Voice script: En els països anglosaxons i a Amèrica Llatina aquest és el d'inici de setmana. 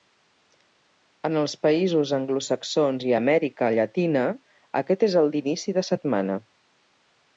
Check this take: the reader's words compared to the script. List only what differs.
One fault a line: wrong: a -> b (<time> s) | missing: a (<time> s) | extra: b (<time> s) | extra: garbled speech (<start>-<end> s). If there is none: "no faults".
no faults